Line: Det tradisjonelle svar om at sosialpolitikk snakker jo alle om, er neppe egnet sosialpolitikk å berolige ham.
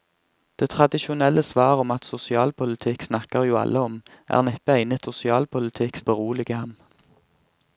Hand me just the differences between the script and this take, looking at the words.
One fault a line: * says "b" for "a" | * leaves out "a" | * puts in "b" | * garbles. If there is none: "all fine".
all fine